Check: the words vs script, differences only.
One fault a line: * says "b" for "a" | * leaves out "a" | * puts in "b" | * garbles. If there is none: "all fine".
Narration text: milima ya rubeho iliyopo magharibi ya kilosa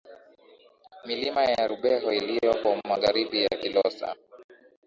all fine